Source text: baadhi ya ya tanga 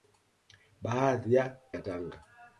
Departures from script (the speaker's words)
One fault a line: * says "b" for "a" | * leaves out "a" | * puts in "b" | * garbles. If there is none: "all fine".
all fine